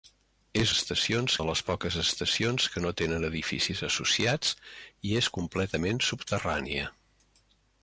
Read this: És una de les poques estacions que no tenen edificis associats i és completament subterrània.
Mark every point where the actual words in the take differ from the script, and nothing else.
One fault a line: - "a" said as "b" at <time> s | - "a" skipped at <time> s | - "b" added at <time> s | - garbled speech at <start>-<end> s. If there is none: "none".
- "una" said as "estacions" at 0.7 s